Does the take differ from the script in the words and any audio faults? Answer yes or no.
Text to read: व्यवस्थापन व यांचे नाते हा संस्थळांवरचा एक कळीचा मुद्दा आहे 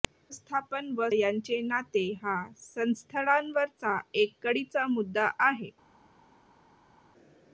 no